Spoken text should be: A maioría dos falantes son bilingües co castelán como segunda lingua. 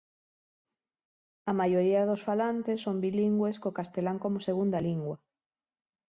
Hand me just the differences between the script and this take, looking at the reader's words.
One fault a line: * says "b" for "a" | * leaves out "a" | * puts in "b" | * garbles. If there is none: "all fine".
all fine